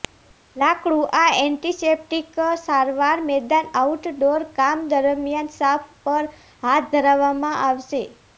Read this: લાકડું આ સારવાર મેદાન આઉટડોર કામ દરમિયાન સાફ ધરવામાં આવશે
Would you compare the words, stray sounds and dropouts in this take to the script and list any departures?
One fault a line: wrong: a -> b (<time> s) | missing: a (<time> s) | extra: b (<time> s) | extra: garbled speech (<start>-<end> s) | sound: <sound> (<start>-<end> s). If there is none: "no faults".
extra: એન્ટિસેપ્ટિક (1.4 s)
extra: પર હાથ (6.0 s)